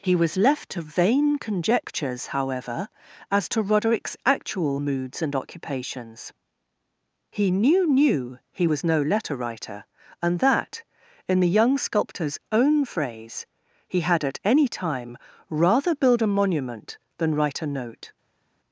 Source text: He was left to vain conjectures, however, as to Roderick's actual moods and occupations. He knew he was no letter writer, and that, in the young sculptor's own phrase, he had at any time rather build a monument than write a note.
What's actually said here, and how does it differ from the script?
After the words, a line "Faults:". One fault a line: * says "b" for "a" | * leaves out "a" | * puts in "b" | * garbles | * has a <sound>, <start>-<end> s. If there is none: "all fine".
He was left to vain conjectures, however, as to Roderick's actual moods and occupations. He knew knew he was no letter writer, and that, in the young sculptor's own phrase, he had at any time rather build a monument than write a note.
Faults:
* puts in "knew"